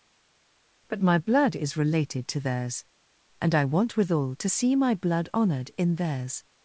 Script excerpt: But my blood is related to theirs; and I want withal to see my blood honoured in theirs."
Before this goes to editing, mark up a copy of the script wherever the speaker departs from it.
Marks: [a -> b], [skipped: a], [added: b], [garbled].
But my blood is related to theirs; and I want withal to see my blood honoured in theirs."